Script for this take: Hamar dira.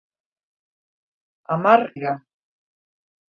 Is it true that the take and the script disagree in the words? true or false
false